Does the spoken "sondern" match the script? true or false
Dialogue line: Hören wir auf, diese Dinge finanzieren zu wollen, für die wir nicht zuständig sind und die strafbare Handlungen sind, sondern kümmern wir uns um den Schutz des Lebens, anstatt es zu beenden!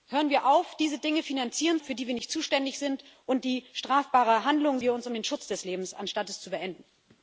false